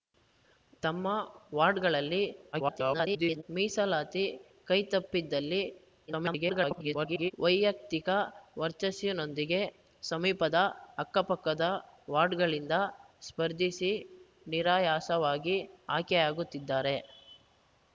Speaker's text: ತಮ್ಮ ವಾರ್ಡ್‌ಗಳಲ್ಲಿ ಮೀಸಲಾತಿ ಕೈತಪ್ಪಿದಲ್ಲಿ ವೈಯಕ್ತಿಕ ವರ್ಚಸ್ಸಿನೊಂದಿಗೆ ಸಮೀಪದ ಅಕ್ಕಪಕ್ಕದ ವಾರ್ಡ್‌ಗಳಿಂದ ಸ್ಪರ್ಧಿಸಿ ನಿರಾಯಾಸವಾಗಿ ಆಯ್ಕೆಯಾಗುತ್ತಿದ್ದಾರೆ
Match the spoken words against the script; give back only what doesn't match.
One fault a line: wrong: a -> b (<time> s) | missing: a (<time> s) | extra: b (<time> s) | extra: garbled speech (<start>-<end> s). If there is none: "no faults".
extra: garbled speech (2.5-3.4 s)
extra: garbled speech (6.1-7.3 s)